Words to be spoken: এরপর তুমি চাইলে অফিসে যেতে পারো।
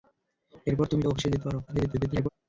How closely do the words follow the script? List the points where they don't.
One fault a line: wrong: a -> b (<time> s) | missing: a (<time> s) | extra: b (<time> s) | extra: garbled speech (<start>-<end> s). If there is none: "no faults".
missing: চাইলে (1.0 s)
extra: garbled speech (1.7-2.3 s)